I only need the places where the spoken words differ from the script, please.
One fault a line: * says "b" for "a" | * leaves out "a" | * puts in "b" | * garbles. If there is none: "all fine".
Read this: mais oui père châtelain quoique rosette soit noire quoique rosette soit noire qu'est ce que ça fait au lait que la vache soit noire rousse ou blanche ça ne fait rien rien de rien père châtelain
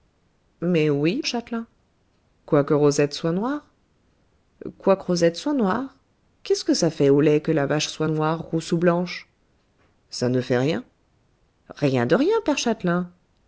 * leaves out "père"